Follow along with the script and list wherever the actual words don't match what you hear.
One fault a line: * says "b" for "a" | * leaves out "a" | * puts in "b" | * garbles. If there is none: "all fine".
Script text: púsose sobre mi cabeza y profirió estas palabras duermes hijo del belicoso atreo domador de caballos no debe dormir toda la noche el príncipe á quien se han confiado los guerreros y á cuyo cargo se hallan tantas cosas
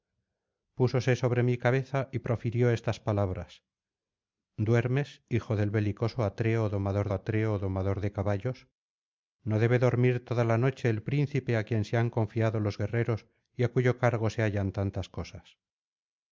* puts in "atreo domador"